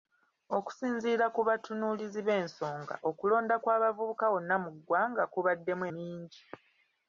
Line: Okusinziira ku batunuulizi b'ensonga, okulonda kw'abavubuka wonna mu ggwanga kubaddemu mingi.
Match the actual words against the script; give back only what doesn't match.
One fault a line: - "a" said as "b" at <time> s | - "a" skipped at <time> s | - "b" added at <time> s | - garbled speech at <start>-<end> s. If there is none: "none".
none